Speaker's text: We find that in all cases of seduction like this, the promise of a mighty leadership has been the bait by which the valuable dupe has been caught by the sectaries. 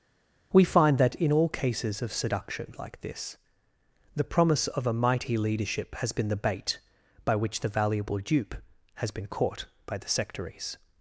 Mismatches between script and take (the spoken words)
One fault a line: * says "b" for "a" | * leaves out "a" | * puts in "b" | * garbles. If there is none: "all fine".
all fine